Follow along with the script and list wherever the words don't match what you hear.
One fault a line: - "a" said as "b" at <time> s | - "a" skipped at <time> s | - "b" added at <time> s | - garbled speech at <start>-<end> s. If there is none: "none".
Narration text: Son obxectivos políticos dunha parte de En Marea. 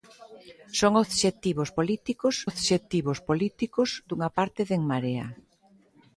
- "obxectivos políticos" added at 2.5 s